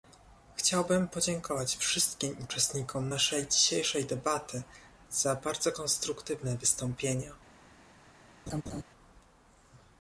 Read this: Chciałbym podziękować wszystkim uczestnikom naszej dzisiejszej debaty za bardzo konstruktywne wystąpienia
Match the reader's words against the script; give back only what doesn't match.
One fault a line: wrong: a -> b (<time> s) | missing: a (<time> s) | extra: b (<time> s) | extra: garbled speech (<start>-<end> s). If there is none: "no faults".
no faults